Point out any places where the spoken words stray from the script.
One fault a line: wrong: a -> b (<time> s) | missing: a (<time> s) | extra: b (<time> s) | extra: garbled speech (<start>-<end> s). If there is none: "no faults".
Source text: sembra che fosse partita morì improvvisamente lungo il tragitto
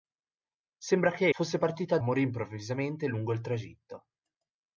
no faults